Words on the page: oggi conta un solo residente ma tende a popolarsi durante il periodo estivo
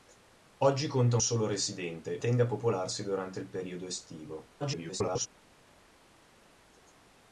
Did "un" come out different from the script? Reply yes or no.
yes